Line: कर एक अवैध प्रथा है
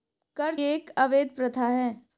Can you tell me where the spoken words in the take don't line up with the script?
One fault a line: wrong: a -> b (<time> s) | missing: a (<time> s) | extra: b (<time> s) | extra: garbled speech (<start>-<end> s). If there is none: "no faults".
no faults